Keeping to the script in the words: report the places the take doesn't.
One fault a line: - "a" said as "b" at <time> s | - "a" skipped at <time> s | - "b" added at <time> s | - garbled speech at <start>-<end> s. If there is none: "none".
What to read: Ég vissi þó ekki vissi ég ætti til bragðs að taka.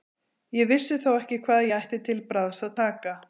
- "vissi" said as "hvað" at 1.4 s